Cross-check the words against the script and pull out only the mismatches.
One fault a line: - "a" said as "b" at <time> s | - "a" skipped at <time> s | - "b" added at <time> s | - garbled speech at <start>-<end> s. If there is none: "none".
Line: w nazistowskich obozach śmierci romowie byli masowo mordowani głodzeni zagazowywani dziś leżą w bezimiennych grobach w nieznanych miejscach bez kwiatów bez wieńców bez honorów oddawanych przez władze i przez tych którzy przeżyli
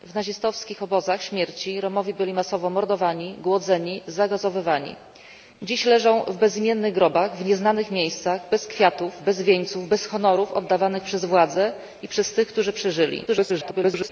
- garbled speech at 13.3-14.1 s